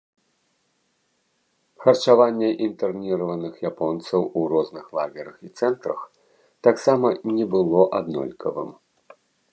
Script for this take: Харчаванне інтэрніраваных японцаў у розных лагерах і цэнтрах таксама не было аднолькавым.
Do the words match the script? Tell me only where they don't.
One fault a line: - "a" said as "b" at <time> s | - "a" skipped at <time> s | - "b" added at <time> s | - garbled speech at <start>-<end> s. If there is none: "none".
none